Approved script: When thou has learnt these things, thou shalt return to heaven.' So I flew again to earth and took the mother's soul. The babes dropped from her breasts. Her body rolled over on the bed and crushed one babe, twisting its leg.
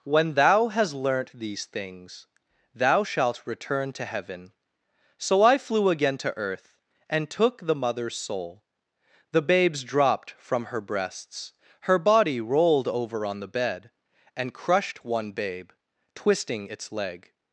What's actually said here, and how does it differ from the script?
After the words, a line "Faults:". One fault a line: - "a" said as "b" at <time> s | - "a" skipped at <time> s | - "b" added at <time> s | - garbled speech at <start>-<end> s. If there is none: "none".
When thou hast learnt these things, thou shalt return to heaven.' So I flew again to earth and took the mother's soul. The babes dropped from her breasts. Her body rolled over on the bed and crushed one babe, twisting its leg.
Faults:
- "has" said as "hast" at 0.7 s